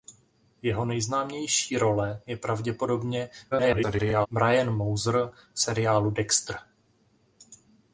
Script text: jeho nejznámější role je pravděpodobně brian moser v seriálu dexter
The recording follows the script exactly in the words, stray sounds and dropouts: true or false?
false